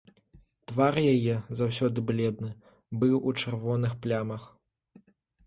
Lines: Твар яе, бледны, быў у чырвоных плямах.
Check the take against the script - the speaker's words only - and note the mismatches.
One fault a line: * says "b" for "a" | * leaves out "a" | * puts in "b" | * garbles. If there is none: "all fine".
* puts in "заўсёды"